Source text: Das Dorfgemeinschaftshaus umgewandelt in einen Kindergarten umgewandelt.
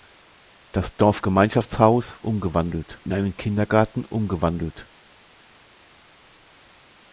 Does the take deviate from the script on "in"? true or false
false